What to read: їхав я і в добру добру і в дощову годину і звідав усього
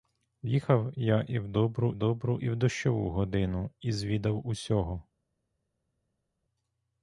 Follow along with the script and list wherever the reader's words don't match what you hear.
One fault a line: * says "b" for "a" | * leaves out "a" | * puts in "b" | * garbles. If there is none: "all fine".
all fine